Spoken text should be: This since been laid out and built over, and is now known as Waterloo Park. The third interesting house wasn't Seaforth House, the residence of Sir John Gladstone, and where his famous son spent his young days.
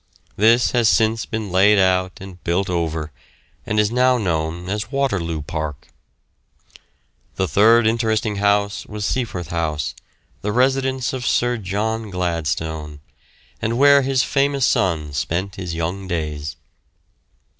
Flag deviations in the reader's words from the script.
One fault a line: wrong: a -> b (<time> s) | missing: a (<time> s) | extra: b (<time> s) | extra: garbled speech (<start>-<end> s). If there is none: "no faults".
extra: has (0.7 s)
wrong: wasn't -> was (8.9 s)